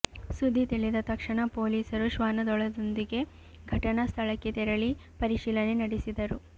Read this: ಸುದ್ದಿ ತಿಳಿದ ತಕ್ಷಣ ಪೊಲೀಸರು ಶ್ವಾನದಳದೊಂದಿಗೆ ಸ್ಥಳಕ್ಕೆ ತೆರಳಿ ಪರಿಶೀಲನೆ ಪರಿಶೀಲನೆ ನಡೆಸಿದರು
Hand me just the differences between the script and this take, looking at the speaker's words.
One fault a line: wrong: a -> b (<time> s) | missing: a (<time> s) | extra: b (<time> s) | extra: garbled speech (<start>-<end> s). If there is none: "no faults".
extra: ಘಟನಾ (3.7 s)
missing: ಪರಿಶೀಲನೆ (5.8 s)